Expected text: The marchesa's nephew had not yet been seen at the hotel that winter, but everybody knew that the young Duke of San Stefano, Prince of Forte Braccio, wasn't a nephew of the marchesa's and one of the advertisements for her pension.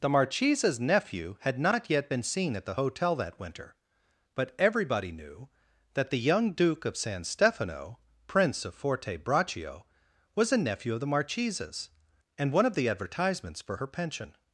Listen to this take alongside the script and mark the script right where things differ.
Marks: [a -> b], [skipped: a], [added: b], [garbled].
The marchesa's nephew had not yet been seen at the hotel that winter, but everybody knew that the young Duke of San Stefano, Prince of Forte Braccio, [wasn't -> was] a nephew of the marchesa's and one of the advertisements for her pension.